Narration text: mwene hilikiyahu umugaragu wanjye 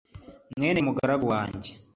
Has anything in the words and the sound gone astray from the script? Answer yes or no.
yes